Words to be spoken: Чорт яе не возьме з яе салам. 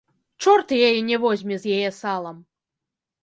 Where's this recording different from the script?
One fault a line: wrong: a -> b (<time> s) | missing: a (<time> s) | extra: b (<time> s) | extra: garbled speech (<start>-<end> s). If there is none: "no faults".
no faults